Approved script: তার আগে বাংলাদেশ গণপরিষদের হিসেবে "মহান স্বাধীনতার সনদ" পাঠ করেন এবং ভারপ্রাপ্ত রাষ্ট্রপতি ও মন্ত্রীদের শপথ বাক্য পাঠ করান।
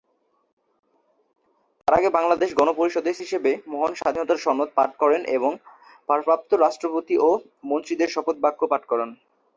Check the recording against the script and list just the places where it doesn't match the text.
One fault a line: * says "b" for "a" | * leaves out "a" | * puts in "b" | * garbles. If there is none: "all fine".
all fine